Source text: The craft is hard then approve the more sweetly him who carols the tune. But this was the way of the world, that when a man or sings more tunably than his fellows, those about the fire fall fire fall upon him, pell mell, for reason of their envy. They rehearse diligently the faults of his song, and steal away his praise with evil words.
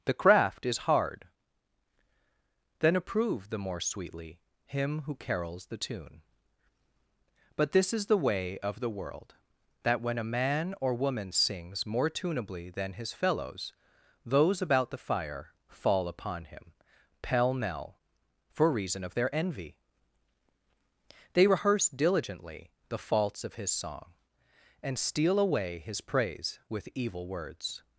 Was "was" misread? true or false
true